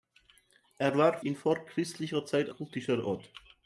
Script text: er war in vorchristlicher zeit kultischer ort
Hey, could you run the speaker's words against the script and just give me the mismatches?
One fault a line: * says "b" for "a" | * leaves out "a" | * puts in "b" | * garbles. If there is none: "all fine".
all fine